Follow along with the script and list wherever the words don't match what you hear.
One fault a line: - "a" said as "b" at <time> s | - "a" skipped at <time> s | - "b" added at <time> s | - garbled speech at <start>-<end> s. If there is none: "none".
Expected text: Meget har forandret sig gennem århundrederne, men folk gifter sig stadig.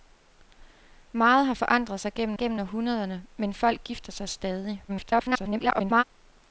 - "gennem" added at 2.4 s
- garbled speech at 4.9-6.0 s